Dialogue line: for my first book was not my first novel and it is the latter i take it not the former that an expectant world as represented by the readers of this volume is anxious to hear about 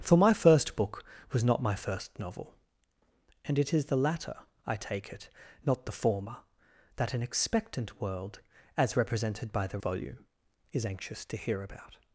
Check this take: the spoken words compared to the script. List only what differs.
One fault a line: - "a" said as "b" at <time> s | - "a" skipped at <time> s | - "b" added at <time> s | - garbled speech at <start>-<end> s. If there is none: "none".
- "readers of this" skipped at 9.8 s